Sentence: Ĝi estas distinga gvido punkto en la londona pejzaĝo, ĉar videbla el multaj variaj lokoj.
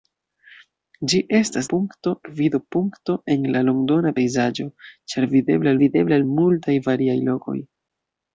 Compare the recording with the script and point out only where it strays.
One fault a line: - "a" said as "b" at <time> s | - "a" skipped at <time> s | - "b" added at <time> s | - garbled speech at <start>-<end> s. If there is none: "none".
- "distinga" said as "punkto" at 1.8 s
- "videbla" added at 5.8 s